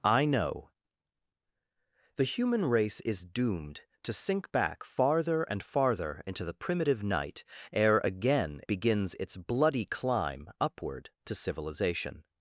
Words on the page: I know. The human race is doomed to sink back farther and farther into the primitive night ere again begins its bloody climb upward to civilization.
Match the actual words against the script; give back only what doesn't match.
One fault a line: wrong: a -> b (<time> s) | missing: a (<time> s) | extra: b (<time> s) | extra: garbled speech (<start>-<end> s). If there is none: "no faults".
no faults